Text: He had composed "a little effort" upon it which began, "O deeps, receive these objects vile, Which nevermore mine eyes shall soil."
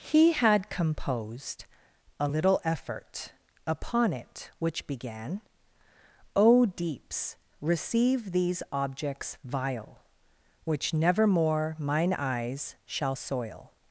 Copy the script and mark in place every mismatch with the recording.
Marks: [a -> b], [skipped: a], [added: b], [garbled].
He had composed "a little effort" upon it which began, "O deeps, receive these objects vile, Which nevermore mine eyes shall soil."